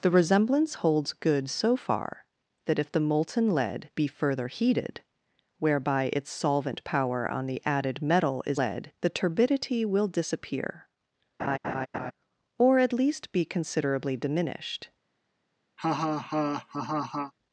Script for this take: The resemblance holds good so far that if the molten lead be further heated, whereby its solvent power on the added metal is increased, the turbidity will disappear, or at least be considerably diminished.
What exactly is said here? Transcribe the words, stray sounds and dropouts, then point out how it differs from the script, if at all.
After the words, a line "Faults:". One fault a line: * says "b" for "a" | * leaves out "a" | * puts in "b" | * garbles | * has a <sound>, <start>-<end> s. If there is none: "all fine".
The resemblance holds good so far that if the molten lead be further heated, whereby its solvent power on the added metal is lead, the turbidity will disappear, or at least be considerably diminished.
Faults:
* says "lead" for "increased"
* has a laugh, 11.4-12.1 s
* has a laugh, 15.8-17.3 s